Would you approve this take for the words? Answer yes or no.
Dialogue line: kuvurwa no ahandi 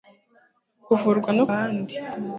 yes